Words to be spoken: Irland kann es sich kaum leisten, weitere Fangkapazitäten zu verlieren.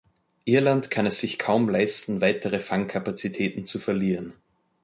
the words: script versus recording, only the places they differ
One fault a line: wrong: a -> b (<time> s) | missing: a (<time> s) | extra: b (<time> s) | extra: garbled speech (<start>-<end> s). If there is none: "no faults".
no faults